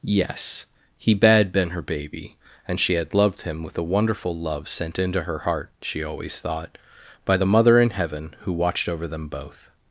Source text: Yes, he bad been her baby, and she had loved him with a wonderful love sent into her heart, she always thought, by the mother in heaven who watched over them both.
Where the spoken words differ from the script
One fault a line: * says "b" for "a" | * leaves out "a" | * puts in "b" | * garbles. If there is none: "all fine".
all fine